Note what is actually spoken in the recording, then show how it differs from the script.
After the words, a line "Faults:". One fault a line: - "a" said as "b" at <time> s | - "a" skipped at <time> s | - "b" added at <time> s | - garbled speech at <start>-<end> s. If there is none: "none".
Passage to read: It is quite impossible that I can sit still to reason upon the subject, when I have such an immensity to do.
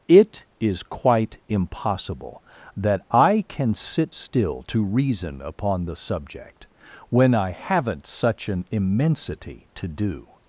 It is quite impossible that I can sit still to reason upon the subject, when I haven't such an immensity to do.
Faults:
- "have" said as "haven't" at 7.5 s